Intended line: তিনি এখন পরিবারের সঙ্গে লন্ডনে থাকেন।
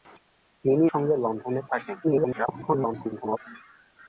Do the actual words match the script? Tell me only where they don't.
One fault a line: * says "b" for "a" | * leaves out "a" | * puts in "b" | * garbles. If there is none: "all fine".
* leaves out "এখন পরিবারের"
* garbles